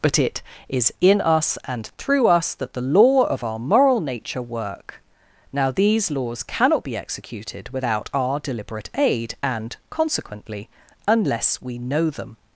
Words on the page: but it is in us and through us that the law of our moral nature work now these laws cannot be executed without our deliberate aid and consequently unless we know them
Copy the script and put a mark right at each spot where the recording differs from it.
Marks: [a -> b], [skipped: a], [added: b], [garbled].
but it is in us and through us that the law of our moral nature work now these laws cannot be executed without our deliberate aid and consequently unless we know them